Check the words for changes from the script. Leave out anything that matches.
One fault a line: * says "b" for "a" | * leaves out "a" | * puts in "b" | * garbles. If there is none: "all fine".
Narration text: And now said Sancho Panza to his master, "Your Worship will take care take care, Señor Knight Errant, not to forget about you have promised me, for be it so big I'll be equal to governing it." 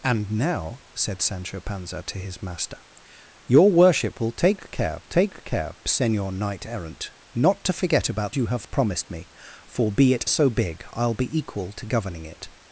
all fine